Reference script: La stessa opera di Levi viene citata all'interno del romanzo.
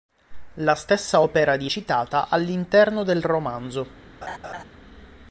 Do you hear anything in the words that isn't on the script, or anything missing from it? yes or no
yes